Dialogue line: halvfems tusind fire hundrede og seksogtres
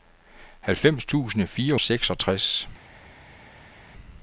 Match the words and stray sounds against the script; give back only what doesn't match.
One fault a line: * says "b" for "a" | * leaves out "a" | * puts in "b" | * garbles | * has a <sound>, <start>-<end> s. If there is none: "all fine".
* leaves out "hundrede og"